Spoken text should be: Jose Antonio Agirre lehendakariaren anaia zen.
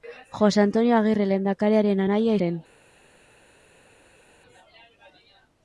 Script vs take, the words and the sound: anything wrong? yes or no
no